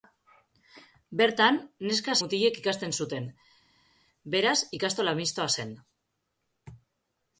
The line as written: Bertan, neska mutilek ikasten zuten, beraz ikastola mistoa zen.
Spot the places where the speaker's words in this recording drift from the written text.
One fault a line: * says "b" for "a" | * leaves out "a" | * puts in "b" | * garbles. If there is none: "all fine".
all fine